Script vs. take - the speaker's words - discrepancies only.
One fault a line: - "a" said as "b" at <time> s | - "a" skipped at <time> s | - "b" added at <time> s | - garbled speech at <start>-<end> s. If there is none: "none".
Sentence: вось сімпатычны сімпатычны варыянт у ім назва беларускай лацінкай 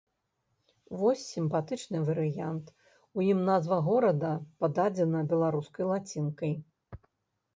- "сімпатычны" skipped at 2.0 s
- "горада пададзена" added at 3.9 s